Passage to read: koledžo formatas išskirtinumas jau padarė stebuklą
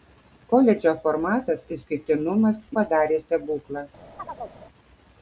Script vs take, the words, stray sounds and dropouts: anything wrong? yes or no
yes